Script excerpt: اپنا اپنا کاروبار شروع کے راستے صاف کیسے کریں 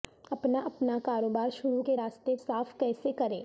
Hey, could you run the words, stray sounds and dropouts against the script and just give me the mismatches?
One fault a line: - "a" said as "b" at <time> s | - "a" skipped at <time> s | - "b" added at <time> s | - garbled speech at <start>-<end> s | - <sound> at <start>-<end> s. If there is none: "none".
none